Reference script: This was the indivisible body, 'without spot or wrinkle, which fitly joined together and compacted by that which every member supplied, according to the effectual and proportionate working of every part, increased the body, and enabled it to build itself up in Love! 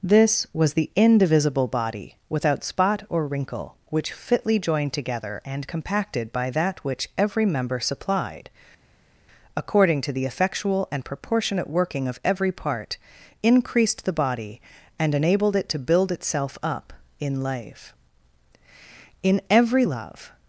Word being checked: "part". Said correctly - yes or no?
yes